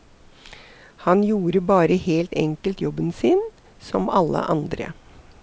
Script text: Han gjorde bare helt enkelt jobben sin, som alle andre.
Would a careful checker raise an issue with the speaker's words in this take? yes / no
no